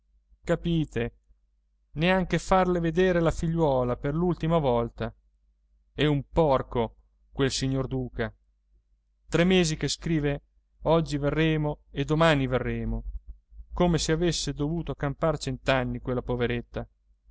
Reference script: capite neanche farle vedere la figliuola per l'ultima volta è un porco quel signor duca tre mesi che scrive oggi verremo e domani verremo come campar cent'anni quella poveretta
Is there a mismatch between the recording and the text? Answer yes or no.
yes